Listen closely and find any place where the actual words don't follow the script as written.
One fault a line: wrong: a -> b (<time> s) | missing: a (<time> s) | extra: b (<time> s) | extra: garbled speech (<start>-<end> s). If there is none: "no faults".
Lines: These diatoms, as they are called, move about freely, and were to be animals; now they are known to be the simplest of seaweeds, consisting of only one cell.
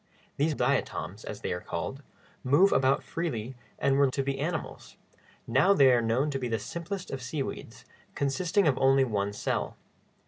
no faults